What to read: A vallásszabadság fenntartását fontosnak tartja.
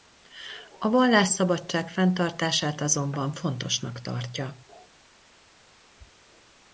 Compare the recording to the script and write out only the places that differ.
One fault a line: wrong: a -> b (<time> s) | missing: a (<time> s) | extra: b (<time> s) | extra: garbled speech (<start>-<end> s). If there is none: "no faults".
extra: azonban (2.8 s)